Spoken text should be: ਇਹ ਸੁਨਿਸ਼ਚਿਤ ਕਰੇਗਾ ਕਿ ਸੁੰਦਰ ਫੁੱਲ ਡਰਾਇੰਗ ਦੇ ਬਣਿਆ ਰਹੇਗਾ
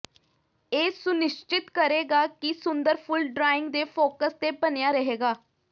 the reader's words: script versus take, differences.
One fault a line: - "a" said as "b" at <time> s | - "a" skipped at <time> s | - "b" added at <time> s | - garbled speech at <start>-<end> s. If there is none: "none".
- "ਫੋਕਸ ਤੇ" added at 3.9 s